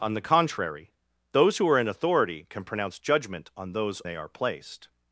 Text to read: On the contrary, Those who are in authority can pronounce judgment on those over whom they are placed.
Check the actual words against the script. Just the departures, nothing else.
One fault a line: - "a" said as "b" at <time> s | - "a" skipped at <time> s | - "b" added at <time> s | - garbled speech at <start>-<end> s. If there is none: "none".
- "over whom" skipped at 4.0 s